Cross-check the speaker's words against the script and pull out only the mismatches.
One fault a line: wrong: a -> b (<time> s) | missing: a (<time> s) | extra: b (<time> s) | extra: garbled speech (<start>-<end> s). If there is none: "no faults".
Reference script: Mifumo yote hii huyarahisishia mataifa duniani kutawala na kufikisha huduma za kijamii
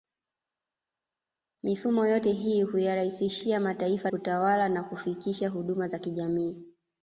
missing: duniani (4.1 s)